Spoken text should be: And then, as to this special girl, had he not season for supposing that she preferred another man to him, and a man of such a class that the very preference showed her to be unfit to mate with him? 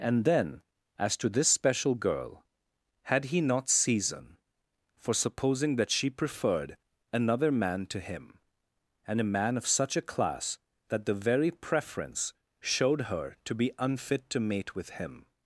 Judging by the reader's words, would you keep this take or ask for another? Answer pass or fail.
pass